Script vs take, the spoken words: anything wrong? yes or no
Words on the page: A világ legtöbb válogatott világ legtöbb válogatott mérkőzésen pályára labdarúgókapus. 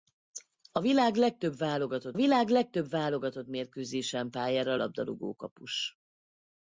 no